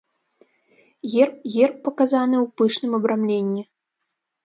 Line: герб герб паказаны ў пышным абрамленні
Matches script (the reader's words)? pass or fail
pass